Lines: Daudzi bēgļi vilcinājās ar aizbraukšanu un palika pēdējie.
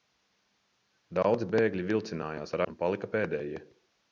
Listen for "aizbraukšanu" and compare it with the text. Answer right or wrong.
wrong